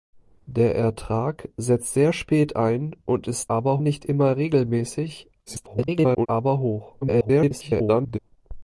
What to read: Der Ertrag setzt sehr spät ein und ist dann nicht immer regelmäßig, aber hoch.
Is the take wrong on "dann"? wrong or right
wrong